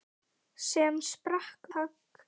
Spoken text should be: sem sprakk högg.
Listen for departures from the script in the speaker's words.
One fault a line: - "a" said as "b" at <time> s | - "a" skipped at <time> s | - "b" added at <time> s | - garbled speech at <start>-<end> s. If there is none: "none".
none